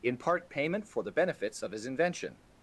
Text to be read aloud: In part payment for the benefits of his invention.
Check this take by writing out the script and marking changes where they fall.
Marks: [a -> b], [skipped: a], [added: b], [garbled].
In part payment for the benefits of his invention.